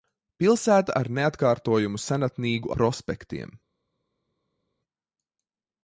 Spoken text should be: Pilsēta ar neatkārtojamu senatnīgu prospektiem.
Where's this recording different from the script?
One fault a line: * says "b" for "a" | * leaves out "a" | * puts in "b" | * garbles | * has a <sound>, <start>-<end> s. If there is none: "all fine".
all fine